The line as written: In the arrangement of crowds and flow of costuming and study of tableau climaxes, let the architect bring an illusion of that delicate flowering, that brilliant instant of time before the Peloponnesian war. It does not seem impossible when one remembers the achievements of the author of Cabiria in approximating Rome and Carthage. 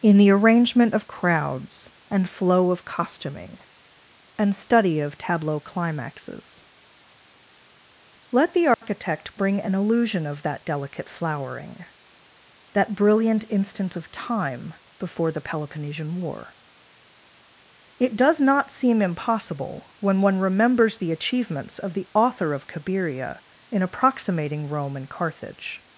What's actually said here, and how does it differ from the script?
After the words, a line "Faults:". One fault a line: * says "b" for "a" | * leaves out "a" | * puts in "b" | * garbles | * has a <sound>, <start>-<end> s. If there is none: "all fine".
In the arrangement of crowds and flow of costuming and study of tableau climaxes, let the architect bring an illusion of that delicate flowering, that brilliant instant of time before the Peloponnesian war. It does not seem impossible when one remembers the achievements of the author of Cabiria in approximating Rome and Carthage.
Faults:
* has a dropout, 8.7-8.8 s